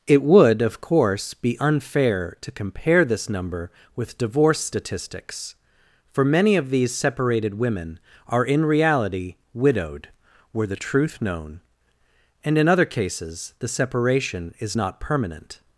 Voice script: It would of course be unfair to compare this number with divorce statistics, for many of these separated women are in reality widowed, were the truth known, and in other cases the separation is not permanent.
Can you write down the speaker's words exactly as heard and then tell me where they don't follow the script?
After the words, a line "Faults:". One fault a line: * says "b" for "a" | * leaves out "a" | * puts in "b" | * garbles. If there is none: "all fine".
It would of course be unfair to compare this number with divorce statistics, for many of these separated women are in reality widowed, were the truth known, and in other cases the separation is not permanent.
Faults:
all fine